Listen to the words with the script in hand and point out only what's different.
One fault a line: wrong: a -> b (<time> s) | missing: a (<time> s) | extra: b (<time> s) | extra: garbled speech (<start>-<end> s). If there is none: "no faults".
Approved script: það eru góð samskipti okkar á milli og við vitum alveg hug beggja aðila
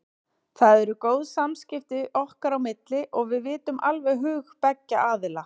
no faults